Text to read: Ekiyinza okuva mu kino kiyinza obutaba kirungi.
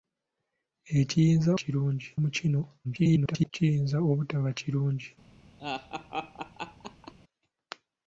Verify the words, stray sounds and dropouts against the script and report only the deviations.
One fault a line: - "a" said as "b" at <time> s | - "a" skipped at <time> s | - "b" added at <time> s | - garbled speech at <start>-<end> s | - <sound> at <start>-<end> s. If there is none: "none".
- "okuva" said as "kirungi" at 1.6 s
- garbled speech at 2.8-3.5 s
- laugh at 5.6-7.1 s